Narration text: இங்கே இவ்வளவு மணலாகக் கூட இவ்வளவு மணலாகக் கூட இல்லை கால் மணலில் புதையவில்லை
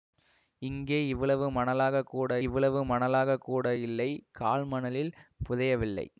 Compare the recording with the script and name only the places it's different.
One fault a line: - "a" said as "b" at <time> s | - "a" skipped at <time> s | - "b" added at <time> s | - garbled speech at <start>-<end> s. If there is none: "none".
none